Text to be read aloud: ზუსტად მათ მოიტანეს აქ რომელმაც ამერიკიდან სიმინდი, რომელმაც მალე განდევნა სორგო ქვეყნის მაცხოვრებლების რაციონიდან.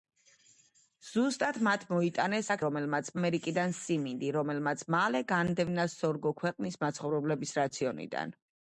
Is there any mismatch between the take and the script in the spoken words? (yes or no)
no